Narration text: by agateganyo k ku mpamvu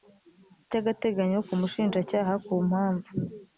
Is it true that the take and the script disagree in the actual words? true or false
true